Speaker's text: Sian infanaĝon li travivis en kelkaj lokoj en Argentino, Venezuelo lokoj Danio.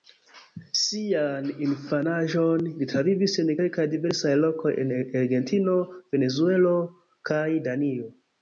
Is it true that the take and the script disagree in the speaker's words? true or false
true